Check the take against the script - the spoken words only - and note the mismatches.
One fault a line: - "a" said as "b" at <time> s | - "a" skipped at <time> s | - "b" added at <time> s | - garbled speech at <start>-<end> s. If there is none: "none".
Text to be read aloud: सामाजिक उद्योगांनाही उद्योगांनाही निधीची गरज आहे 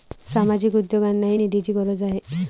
- "उद्योगांनाही" skipped at 1.4 s